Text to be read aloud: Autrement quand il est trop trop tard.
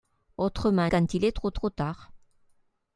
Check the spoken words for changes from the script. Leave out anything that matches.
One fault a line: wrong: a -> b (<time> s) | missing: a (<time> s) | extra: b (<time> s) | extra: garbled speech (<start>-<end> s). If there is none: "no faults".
no faults